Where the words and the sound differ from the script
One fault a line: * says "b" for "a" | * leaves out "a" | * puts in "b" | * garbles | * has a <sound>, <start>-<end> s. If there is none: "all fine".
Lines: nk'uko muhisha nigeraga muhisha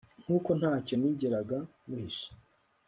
* says "ntacyo" for "muhisha"